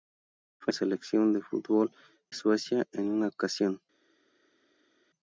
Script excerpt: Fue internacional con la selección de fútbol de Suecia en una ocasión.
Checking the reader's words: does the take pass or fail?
fail